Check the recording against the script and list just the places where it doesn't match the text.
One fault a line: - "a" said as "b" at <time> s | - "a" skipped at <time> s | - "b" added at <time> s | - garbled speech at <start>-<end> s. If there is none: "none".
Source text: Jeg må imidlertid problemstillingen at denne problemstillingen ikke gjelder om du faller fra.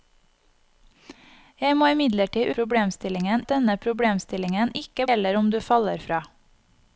none